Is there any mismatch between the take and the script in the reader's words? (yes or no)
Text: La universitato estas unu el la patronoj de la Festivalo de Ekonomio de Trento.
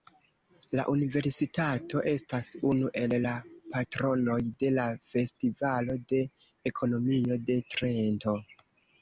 no